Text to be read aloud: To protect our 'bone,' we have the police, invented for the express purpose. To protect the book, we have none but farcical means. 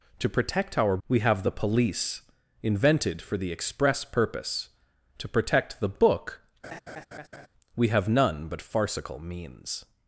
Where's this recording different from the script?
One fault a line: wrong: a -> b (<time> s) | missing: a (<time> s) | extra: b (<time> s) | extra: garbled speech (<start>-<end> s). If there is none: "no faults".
missing: bone (1.0 s)